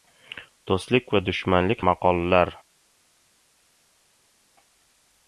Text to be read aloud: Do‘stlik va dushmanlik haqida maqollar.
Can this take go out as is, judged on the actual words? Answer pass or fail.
fail